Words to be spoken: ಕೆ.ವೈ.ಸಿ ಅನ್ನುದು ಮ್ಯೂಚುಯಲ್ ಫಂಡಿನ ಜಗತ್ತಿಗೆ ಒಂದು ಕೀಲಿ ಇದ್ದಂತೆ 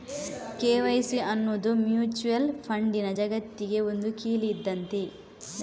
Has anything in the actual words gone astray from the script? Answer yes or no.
no